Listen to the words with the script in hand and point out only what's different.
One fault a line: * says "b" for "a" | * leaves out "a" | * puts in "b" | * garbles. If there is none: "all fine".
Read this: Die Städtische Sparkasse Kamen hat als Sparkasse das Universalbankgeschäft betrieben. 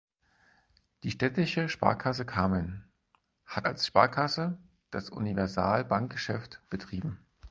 all fine